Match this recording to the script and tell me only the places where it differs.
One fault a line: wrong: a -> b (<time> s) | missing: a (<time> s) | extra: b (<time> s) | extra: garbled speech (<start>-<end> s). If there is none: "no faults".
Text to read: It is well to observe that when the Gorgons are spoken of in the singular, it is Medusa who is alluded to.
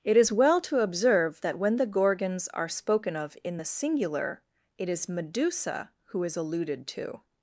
no faults